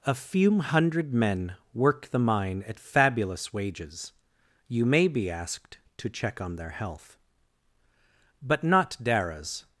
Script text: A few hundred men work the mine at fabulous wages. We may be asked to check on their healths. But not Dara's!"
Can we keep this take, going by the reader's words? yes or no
no